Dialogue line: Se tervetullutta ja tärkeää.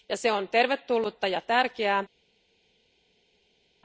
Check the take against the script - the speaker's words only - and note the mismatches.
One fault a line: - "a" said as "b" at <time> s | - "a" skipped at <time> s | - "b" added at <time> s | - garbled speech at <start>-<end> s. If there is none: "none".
- "on" added at 0.3 s